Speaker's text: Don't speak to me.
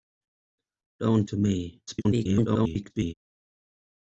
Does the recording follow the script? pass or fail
fail